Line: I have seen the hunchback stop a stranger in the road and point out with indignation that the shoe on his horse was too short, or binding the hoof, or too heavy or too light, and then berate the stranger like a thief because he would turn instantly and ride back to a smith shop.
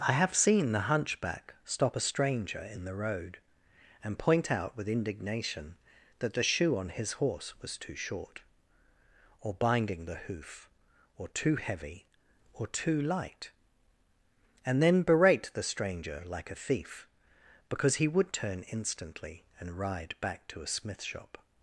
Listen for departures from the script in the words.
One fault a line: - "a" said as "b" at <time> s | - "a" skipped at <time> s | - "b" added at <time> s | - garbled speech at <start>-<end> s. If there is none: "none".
none